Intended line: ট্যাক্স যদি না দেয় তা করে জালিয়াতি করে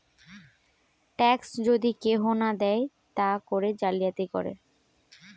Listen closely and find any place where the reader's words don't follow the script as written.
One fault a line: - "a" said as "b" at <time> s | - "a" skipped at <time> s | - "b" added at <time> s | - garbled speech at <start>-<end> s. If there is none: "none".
- "কেহু" added at 2.0 s